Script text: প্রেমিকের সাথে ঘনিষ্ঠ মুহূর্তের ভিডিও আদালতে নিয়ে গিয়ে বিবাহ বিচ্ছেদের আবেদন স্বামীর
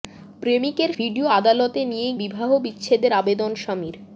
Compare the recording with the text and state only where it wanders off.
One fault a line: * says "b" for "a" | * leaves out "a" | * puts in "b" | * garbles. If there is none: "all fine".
* leaves out "সাথে ঘনিষ্ঠ মুহূর্তের"
* leaves out "গিয়ে"